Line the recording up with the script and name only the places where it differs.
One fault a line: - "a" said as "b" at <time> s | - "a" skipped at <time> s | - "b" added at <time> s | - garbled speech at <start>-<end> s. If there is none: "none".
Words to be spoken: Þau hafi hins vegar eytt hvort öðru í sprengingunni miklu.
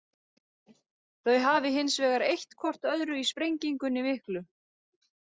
none